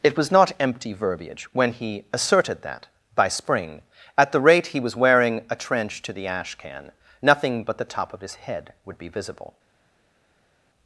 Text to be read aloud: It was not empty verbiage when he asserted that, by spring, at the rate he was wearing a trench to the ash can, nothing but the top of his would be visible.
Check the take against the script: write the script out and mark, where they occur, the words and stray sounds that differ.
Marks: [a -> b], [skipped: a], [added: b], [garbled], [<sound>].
It was not empty verbiage when he asserted that, by spring, at the rate he was wearing a trench to the ash can, nothing but the top of his [added: head] would be visible.